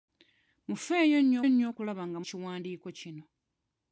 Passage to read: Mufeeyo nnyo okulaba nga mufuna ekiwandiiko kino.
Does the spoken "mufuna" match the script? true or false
false